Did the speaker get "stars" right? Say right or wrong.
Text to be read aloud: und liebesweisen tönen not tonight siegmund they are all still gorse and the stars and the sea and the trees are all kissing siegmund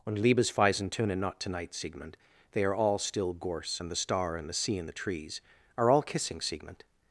wrong